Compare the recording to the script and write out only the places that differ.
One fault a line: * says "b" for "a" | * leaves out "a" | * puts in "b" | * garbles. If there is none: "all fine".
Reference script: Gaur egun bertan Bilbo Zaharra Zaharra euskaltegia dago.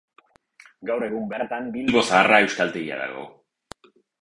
* leaves out "Zaharra"